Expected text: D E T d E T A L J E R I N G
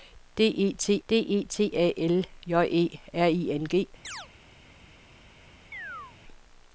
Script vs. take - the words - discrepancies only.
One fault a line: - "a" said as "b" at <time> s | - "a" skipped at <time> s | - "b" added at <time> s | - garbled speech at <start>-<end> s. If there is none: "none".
none